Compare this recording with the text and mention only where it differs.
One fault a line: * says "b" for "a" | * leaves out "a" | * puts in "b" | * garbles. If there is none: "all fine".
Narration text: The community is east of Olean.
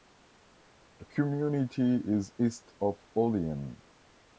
all fine